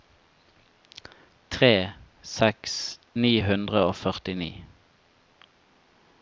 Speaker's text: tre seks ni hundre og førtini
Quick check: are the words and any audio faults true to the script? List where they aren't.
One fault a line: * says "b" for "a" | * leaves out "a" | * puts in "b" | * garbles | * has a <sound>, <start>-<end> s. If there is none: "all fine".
all fine